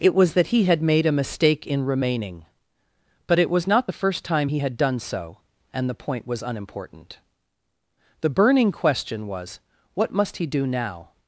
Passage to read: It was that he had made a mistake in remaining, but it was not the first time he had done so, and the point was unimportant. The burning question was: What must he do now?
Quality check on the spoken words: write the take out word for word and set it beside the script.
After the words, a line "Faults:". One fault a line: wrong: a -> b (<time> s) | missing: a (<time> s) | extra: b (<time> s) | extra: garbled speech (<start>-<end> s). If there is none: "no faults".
It was that he had made a mistake in remaining, but it was not the first time he had done so, and the point was unimportant. The burning question was: What must he do now?
Faults:
no faults